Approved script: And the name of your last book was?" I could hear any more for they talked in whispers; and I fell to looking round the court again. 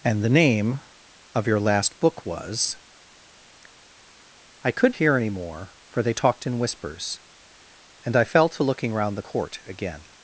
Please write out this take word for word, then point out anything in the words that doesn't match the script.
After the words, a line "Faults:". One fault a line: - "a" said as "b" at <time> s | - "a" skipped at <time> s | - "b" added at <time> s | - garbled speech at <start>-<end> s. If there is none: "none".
And the name of your last book was?" I could hear any more for they talked in whispers; and I fell to looking round the court again.
Faults:
none